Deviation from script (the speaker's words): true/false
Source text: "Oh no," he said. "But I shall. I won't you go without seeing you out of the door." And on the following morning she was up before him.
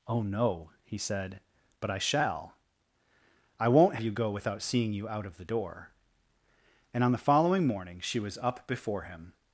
false